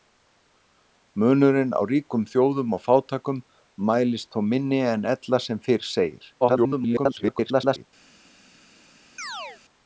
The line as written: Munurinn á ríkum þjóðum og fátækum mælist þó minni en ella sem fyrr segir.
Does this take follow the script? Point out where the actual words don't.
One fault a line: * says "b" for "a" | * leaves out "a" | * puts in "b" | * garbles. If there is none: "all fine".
* garbles